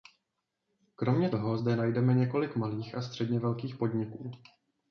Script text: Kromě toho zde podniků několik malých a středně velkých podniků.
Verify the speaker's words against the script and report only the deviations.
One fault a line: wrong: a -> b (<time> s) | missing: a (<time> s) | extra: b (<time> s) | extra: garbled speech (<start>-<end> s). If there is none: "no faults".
wrong: podniků -> najdeme (1.8 s)